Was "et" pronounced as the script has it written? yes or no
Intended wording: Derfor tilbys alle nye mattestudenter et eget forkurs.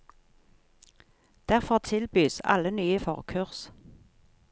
no